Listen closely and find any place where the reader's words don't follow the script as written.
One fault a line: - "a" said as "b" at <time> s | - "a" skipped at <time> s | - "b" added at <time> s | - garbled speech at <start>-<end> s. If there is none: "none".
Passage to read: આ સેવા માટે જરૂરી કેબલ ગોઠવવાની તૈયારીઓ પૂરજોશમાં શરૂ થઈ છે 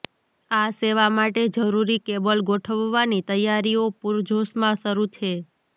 - "થઈ" skipped at 5.1 s